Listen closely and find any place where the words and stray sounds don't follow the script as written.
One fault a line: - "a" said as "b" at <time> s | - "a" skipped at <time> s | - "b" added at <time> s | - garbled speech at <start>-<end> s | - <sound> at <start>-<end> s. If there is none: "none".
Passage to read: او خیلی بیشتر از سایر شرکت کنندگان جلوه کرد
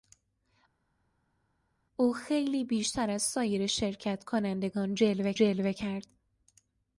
- "جلوه" added at 5.3 s